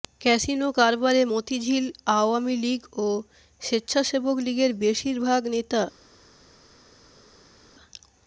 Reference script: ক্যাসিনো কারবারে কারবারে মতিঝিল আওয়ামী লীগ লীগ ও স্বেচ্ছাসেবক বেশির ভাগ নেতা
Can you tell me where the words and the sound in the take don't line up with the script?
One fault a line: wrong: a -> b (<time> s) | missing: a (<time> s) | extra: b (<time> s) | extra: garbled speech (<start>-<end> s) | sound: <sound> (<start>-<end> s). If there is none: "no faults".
missing: কারবারে (1.2 s)
missing: লীগ (2.8 s)
extra: লীগের (4.5 s)